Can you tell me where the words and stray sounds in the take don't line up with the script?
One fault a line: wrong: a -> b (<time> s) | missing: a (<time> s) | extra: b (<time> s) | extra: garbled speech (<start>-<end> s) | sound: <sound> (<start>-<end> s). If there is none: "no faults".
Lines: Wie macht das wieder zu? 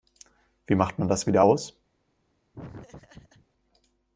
extra: man (1.0 s)
wrong: zu -> aus (1.4 s)
sound: laugh (2.5-3.5 s)